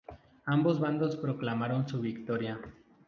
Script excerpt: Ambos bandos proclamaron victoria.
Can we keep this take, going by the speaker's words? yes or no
no